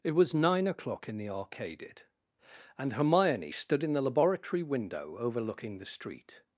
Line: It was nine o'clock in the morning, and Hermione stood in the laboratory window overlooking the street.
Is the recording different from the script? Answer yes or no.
yes